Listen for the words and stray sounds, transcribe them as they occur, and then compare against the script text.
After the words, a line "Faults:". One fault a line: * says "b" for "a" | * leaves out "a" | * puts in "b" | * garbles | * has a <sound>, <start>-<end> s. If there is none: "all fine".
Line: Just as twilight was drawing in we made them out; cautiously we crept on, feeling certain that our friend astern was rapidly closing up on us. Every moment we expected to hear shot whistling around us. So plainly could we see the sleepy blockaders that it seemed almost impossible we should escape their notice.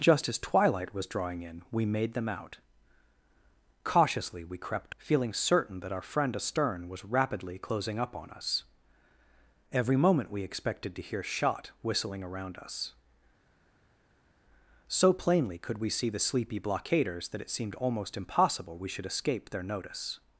Just as twilight was drawing in we made them out; cautiously we crept feeling certain that our friend astern was rapidly closing up on us. Every moment we expected to hear shot whistling around us. So plainly could we see the sleepy blockaders that it seemed almost impossible we should escape their notice.
Faults:
* leaves out "on"